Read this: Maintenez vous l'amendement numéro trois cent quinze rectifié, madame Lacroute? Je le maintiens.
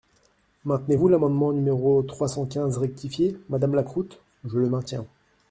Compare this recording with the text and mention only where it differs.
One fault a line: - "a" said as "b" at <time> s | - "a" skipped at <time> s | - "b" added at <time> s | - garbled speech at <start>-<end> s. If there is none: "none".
none